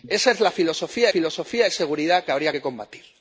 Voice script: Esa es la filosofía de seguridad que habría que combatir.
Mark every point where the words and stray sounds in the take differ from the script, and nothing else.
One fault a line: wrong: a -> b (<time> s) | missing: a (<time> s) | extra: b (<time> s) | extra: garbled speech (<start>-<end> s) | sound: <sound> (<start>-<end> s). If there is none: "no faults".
extra: filosofía (1.1 s)